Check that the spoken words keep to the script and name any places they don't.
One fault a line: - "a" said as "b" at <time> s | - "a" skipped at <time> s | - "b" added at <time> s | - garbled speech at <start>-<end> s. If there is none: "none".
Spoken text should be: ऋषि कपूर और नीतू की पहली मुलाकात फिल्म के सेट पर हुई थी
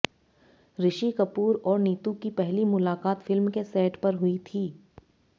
none